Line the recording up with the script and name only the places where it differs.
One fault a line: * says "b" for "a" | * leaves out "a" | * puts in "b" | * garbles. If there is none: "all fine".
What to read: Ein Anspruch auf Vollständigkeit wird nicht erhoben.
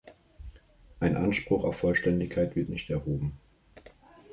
all fine